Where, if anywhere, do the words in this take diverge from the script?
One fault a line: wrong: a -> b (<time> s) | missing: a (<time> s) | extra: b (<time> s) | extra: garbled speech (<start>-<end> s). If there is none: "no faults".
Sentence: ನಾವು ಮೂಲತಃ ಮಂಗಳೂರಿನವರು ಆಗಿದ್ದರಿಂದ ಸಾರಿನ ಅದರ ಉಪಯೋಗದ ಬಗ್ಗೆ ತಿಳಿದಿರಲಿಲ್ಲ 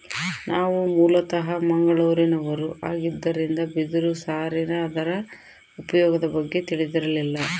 extra: ಬಿದಿರು (3.7 s)